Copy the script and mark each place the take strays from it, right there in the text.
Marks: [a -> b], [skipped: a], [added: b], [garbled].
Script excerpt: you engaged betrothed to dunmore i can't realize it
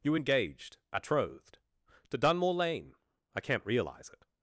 you engaged betrothed to dunmore [added: lane] i can't realize it